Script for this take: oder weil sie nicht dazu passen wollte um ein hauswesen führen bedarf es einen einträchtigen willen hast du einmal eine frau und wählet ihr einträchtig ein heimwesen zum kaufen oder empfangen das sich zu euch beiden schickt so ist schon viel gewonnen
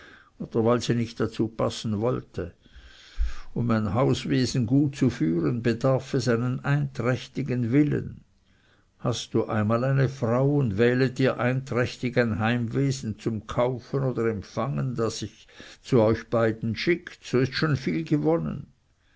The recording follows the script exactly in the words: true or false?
false